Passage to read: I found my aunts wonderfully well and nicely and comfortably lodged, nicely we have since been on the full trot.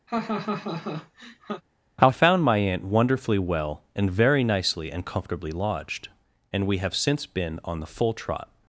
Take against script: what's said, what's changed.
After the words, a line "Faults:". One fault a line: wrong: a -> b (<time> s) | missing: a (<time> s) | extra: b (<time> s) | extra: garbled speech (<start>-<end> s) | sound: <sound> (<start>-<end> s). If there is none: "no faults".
I found my aunt wonderfully well and very nicely and comfortably lodged, and we have since been on the full trot.
Faults:
sound: laugh (0.1-1.6 s)
wrong: aunts -> aunt (2.6 s)
extra: very (4.1 s)
wrong: nicely -> and (6.5 s)